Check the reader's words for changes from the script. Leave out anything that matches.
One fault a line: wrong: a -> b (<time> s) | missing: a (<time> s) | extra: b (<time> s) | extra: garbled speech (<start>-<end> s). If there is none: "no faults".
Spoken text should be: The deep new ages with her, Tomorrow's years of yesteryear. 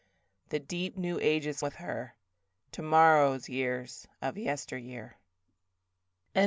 no faults